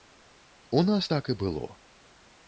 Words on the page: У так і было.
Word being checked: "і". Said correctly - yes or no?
yes